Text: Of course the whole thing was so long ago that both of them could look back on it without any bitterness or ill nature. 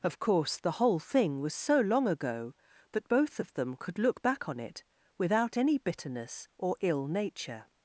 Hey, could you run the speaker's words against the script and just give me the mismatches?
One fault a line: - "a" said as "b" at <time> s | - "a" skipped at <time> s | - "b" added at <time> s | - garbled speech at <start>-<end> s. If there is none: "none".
none